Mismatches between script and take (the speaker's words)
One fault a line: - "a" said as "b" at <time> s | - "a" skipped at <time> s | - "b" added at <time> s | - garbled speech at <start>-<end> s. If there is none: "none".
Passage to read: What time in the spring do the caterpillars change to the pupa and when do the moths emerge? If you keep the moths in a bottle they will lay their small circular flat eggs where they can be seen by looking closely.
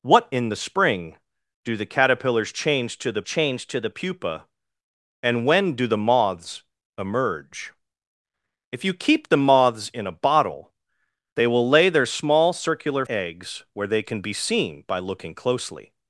- "time" skipped at 0.3 s
- "change to the" added at 3.2 s
- "flat" skipped at 13.0 s